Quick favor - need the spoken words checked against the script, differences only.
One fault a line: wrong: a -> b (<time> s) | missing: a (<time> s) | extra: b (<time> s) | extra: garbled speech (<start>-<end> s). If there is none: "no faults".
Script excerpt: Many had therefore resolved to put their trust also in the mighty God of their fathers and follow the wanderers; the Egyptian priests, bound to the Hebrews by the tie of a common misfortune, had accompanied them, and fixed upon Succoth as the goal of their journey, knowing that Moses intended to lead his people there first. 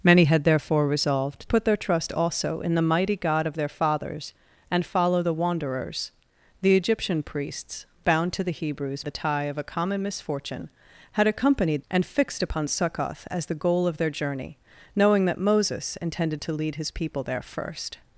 missing: to (1.5 s)
missing: by (9.0 s)
missing: them (11.8 s)